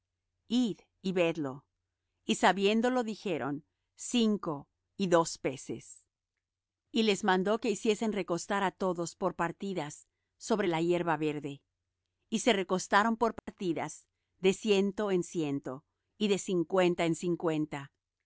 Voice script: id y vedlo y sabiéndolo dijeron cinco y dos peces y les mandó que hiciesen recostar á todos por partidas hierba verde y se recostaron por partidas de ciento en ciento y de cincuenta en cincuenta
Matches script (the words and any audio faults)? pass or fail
fail